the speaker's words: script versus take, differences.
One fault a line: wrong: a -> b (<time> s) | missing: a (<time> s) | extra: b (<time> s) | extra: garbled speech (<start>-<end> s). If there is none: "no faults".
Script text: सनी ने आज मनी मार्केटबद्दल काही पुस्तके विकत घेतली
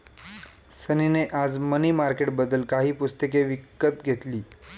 no faults